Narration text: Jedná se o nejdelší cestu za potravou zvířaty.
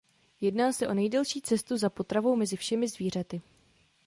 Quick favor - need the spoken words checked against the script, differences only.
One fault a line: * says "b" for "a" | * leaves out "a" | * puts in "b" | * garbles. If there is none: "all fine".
* puts in "mezi všemi"